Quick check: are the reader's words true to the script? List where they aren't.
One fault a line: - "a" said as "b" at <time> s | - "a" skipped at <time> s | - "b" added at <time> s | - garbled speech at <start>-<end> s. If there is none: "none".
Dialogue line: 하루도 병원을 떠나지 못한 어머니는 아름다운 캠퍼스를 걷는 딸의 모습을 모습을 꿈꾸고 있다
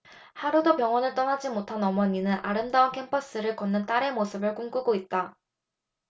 - "모습을" skipped at 4.5 s